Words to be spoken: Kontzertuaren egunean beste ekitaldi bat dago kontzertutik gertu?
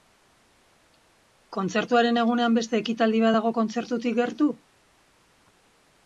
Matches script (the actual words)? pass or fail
pass